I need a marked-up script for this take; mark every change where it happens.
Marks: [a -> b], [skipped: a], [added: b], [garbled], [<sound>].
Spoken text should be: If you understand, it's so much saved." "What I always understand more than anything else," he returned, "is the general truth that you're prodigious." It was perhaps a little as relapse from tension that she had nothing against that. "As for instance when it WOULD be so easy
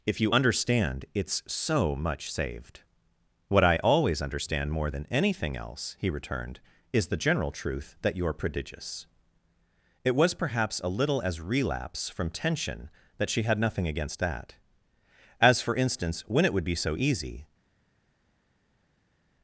If you understand, it's so much saved." "What I always understand more than anything else," he returned, "is the general truth that you're prodigious." It was perhaps a little as relapse from tension that she had nothing against that. "As for instance when it WOULD be so easy